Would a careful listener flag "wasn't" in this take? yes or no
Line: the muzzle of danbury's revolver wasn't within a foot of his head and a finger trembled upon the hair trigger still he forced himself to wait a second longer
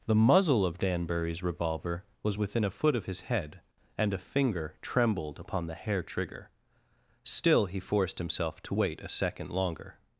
yes